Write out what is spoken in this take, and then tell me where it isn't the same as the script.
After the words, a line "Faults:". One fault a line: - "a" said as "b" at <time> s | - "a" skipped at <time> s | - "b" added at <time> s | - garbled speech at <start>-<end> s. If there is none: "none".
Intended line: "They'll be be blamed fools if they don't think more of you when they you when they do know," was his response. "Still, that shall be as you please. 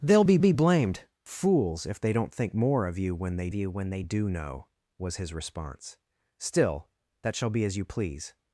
"They'll be be blamed fools if they don't think more of you when they you when they do know," was his response. "Still, that shall be as you please.
Faults:
none